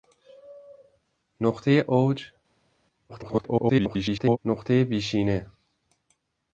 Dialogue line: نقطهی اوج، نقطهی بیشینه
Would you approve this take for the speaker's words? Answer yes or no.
no